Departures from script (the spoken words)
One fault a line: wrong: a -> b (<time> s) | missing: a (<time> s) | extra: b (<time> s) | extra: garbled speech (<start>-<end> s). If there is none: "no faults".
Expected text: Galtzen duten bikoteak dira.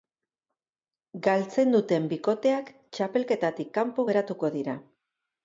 extra: txapelketatik kanpo geratuko (3.0 s)